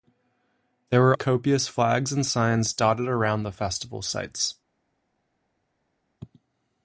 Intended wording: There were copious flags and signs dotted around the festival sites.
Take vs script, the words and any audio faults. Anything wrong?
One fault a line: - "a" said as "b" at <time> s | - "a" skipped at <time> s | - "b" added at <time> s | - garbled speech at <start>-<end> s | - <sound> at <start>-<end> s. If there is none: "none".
none